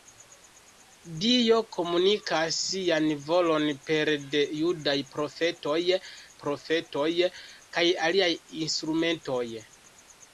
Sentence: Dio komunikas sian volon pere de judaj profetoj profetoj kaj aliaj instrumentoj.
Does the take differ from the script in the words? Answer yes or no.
no